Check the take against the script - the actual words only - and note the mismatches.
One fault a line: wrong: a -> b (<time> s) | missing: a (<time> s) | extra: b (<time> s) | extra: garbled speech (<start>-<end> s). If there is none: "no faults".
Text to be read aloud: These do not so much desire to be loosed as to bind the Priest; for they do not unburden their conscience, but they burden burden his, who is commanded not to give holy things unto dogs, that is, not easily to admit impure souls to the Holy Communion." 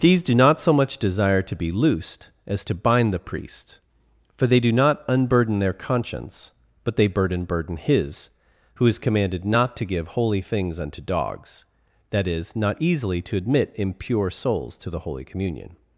no faults